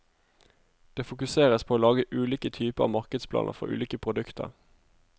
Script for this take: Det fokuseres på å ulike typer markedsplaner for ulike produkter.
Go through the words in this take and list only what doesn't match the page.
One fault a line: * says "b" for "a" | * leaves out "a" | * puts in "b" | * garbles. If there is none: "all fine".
* puts in "lage"